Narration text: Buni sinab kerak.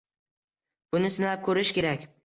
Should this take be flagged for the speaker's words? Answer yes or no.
yes